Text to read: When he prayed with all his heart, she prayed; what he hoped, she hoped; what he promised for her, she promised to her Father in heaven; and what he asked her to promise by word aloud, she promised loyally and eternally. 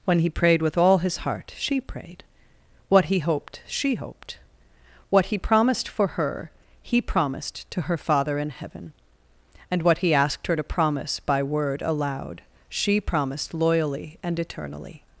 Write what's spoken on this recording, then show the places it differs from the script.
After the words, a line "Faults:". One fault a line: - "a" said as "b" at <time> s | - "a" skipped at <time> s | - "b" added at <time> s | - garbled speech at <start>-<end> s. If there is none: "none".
When he prayed with all his heart, she prayed; what he hoped, she hoped; what he promised for her, he promised to her Father in heaven; and what he asked her to promise by word aloud, she promised loyally and eternally.
Faults:
- "she" said as "he" at 6.8 s